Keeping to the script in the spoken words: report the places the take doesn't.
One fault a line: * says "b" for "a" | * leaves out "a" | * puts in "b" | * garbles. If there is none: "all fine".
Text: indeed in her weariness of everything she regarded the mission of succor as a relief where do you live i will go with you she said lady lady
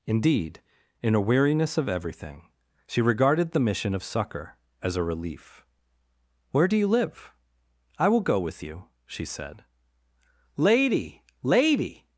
* says "a" for "her"